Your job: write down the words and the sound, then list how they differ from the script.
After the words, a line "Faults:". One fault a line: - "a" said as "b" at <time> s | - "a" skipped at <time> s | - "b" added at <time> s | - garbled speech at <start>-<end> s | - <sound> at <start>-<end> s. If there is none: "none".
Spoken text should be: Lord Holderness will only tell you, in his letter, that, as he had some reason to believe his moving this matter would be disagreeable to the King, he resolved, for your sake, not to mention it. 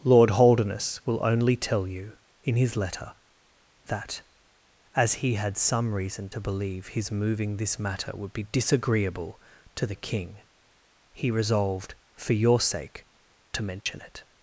Lord Holderness will only tell you, in his letter, that, as he had some reason to believe his moving this matter would be disagreeable to the King, he resolved, for your sake, to mention it.
Faults:
- "not" skipped at 13.1 s
- dropout at 13.8-13.9 s